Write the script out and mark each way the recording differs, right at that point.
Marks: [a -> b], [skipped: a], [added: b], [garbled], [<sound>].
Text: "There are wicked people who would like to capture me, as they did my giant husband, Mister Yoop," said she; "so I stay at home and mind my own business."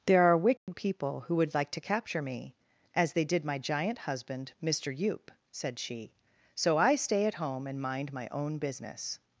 "There are wicked [dropout] people who would like to capture me, as they did my giant husband, Mister Yoop," said she; "so I stay at home and mind my own business."